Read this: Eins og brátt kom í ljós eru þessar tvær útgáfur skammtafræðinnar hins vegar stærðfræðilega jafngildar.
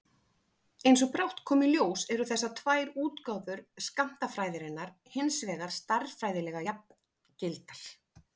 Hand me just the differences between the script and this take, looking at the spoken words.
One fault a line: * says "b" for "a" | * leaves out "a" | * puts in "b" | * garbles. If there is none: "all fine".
all fine